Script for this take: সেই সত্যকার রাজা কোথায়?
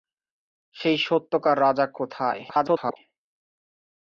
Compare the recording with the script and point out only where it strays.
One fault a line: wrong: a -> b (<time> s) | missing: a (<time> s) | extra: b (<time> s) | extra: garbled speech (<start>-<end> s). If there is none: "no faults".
extra: garbled speech (2.5-3.0 s)